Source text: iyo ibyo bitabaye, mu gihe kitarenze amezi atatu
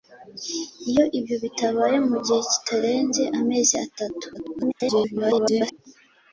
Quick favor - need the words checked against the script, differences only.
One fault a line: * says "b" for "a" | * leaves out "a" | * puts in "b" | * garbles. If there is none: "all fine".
* garbles